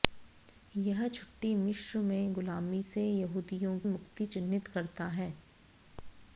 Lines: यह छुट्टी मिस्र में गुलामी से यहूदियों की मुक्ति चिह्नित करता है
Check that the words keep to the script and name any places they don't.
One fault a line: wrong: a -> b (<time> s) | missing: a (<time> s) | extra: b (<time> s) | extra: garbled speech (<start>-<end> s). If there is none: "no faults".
missing: की (3.8 s)